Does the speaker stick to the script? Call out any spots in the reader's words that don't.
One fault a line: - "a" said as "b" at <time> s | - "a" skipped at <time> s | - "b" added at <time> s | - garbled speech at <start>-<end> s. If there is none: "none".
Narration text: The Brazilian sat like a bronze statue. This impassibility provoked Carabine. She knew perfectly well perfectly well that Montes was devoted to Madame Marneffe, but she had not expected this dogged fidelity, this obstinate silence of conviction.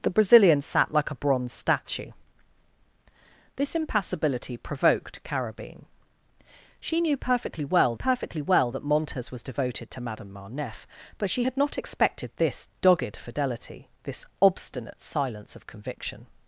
none